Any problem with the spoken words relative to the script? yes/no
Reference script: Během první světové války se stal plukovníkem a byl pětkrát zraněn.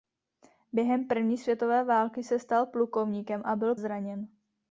yes